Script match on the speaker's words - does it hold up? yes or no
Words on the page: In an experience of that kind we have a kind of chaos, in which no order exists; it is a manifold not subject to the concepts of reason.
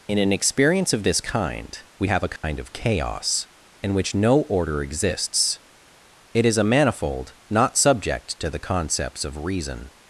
no